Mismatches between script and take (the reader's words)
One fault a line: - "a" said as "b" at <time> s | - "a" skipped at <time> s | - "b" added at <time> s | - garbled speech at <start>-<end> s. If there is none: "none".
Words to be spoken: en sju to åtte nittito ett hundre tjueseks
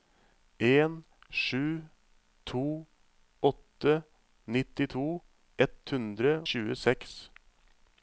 none